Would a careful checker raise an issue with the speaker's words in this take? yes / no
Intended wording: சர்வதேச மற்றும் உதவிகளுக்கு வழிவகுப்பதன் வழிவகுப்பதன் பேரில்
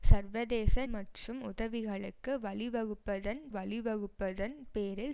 no